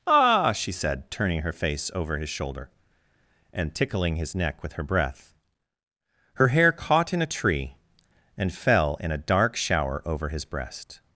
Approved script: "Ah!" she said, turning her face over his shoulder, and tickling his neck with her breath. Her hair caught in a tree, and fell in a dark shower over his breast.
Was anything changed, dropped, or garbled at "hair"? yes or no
no